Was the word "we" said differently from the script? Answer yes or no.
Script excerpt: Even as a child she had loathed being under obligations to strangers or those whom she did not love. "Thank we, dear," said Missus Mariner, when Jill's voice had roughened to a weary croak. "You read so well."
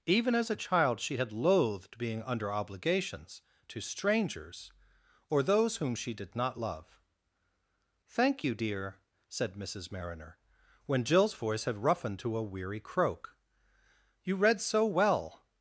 yes